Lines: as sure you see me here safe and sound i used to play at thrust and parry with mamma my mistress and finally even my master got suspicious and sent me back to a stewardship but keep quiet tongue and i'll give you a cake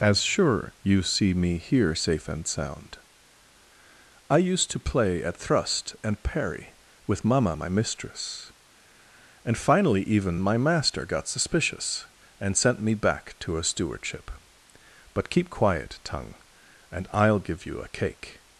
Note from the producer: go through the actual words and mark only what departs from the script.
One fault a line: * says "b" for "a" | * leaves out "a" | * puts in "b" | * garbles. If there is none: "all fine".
all fine